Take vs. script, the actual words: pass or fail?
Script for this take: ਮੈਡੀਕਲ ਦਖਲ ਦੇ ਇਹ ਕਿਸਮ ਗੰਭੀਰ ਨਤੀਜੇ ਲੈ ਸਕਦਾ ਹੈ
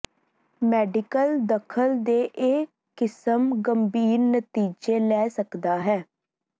pass